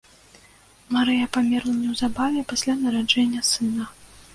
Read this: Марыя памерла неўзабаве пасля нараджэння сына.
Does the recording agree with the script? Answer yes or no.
yes